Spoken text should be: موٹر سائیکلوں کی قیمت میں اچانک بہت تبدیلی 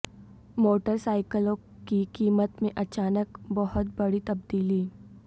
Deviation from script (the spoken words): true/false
true